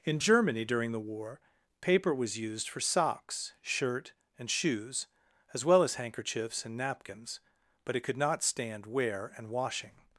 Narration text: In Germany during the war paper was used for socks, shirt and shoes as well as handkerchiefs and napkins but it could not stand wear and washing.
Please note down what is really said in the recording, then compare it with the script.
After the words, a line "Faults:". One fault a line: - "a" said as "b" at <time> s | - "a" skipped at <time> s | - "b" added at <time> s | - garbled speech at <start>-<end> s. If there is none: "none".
In Germany during the war paper was used for socks, shirt and shoes as well as handkerchiefs and napkins but it could not stand wear and washing.
Faults:
none